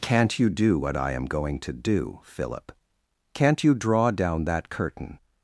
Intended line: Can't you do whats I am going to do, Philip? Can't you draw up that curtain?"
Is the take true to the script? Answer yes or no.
no